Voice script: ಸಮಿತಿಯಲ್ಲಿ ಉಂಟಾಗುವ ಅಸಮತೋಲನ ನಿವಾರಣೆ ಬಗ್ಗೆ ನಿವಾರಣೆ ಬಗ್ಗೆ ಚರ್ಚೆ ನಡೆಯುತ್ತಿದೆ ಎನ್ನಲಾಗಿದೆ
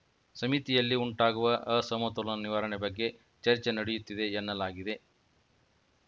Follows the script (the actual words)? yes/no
no